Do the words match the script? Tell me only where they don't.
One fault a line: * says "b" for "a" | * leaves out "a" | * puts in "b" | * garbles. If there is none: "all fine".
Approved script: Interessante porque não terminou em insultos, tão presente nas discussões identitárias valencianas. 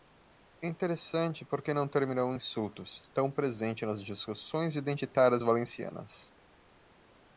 all fine